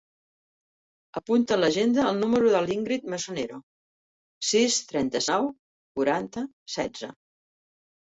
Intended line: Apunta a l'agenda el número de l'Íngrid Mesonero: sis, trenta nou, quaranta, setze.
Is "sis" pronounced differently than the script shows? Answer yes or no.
no